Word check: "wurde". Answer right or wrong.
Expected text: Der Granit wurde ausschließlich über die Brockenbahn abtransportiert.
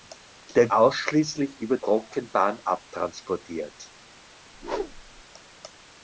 wrong